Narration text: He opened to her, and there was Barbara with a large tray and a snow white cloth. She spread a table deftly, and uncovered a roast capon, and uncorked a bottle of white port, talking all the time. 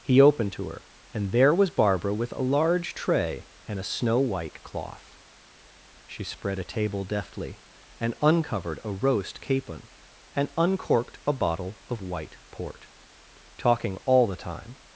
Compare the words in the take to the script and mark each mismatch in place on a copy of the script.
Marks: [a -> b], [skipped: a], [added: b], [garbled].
He opened to her, and there was Barbara with a large tray and a snow white cloth. She spread a table deftly, and uncovered a roast capon, and uncorked a bottle of white port, talking all the time.